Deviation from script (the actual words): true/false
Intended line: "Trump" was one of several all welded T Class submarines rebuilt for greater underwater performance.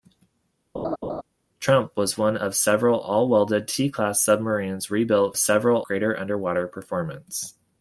true